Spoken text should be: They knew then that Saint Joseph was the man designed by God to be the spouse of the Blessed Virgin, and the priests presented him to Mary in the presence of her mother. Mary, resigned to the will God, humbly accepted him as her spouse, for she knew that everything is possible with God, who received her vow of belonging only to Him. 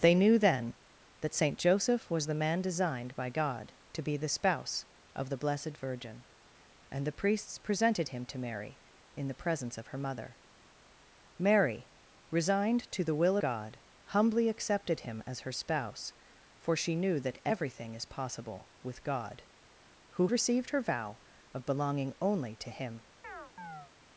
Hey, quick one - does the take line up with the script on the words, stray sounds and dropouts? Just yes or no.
no